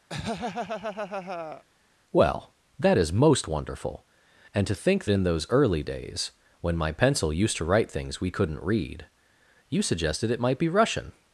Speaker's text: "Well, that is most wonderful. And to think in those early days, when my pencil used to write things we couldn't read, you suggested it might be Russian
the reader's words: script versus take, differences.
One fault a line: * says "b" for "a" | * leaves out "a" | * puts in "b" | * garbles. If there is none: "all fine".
all fine